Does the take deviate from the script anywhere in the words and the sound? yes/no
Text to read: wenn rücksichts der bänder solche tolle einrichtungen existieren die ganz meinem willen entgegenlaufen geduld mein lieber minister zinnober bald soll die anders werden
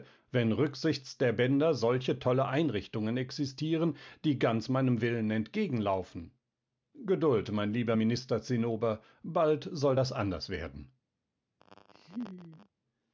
yes